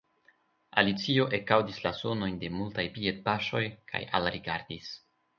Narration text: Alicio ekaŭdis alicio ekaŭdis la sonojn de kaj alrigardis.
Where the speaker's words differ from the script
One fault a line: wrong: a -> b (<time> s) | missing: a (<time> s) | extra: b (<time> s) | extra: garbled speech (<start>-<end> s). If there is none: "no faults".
missing: alicio ekaŭdis (1.8 s)
extra: multaj piedpaŝoj (2.6 s)